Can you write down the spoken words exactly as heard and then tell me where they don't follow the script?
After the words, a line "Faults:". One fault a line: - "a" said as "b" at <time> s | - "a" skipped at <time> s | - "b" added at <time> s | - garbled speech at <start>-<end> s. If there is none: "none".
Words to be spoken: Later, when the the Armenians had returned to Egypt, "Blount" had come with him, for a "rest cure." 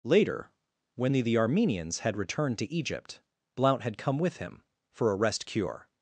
Later, when the the Armenians had returned to Egypt, "Blount" had come with him, for a "rest cure."
Faults:
none